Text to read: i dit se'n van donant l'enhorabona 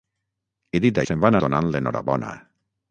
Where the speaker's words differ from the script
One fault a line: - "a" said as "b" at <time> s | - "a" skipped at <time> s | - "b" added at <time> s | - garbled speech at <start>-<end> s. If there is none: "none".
none